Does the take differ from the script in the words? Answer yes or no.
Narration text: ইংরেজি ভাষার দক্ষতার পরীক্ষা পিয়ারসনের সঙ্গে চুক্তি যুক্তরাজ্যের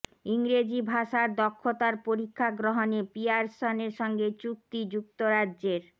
yes